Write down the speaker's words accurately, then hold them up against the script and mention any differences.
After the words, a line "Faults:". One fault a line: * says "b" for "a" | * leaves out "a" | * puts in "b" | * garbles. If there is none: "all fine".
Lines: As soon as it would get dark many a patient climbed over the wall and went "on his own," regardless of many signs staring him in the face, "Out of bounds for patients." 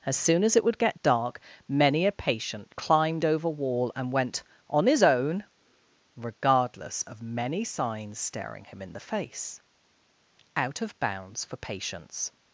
As soon as it would get dark many a patient climbed over wall and went "on his own," regardless of many signs staring him in the face, "Out of bounds for patients."
Faults:
* leaves out "the"